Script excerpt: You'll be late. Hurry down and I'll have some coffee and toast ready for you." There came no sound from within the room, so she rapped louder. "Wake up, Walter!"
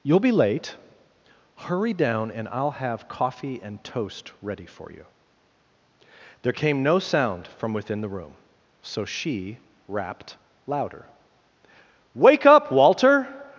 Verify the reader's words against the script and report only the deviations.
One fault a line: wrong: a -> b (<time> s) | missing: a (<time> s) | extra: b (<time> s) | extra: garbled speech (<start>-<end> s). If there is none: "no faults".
missing: some (3.1 s)